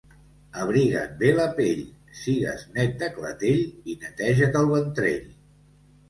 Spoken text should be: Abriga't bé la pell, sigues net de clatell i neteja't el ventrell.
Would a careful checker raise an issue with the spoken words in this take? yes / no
no